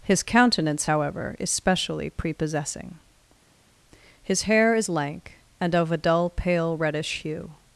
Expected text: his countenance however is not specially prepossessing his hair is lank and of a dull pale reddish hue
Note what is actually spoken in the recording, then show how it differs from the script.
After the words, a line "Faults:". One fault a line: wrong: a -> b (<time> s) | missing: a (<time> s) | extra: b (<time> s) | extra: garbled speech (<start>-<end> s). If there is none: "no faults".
his countenance however is specially prepossessing his hair is lank and of a dull pale reddish hue
Faults:
missing: not (1.5 s)